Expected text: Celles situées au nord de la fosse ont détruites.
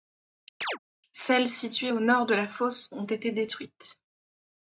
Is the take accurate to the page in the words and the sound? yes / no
no